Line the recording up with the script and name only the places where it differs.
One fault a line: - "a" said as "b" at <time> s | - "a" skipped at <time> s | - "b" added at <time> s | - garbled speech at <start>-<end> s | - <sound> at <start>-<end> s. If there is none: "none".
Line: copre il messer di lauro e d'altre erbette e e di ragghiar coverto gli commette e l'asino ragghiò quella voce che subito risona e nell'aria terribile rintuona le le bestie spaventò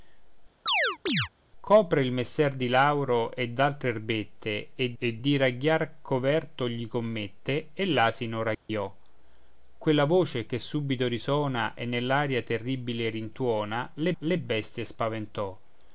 - chirp at 0.7-1.3 s
- dropout at 8.5-8.7 s